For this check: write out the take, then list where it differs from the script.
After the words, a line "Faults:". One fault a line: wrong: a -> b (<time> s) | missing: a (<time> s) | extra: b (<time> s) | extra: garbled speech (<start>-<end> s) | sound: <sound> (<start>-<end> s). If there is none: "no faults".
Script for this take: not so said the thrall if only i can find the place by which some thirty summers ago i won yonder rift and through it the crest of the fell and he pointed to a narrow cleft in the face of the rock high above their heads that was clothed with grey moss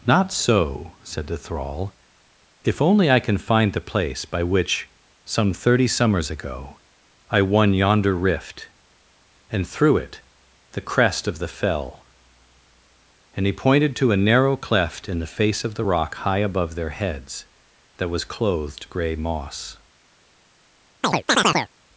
not so said the thrall if only i can find the place by which some thirty summers ago i won yonder rift and through it the crest of the fell and he pointed to a narrow cleft in the face of the rock high above their heads that was clothed grey moss
Faults:
missing: with (18.9 s)
sound: chirp (21.0-21.7 s)